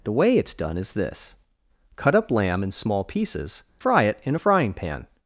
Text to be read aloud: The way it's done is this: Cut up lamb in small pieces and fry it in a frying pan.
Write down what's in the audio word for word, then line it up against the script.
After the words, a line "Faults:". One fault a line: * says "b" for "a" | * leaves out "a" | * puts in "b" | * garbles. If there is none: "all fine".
The way it's done is this: Cut up lamb in small pieces fry it in a frying pan.
Faults:
* leaves out "and"